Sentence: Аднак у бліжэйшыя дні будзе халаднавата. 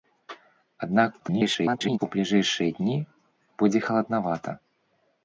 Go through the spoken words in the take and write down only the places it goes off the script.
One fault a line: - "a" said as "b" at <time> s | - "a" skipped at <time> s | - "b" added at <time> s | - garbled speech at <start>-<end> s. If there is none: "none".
- garbled speech at 1.2-2.0 s